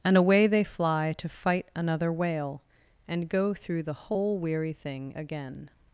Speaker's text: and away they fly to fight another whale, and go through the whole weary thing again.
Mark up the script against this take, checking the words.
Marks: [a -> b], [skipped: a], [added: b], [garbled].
and away they fly to fight another whale, and go through the whole weary thing again.